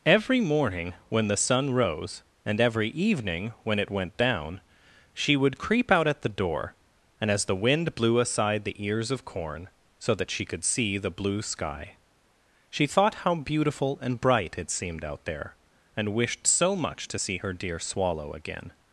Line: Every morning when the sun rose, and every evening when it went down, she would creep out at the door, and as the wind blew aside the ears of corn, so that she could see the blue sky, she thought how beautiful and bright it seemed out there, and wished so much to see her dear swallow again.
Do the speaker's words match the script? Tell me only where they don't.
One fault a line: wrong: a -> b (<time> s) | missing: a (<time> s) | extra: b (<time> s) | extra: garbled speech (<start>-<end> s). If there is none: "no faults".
no faults